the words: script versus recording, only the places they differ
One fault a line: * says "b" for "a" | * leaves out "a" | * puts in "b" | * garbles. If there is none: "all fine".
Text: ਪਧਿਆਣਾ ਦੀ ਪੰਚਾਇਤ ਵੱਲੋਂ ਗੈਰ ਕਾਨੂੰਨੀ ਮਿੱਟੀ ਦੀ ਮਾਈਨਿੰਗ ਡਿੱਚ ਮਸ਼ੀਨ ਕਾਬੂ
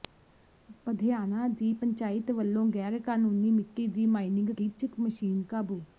all fine